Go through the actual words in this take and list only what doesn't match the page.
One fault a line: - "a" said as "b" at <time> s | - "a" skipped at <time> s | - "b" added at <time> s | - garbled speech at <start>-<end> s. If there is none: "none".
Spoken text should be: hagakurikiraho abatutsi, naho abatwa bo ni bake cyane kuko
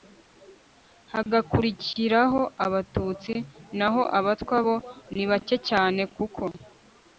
none